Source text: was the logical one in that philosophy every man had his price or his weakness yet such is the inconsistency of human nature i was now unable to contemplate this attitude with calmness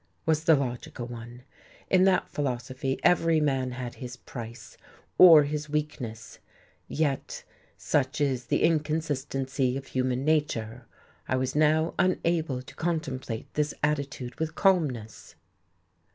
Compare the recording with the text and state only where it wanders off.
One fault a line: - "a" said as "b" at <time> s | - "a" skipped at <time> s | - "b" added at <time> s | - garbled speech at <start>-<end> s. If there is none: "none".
none